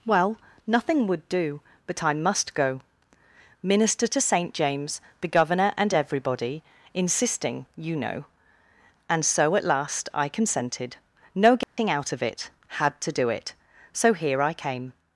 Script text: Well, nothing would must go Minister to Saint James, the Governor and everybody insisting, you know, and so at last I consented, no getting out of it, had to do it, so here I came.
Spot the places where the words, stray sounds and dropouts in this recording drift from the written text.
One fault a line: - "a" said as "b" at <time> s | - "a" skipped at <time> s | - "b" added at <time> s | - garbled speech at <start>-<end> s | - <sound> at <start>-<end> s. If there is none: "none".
- "do but I" added at 1.3 s
- dropout at 11.6-11.8 s